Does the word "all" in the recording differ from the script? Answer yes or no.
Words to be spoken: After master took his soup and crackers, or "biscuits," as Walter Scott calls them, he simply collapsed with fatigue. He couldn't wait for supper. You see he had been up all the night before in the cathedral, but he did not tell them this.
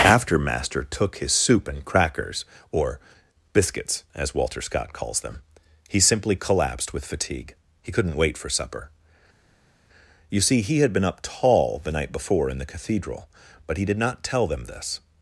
yes